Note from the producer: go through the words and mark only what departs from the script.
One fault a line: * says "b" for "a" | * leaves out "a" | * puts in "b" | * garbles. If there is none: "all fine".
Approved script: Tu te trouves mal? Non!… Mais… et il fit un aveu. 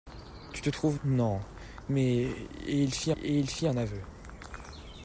* leaves out "mal"
* puts in "et il fit"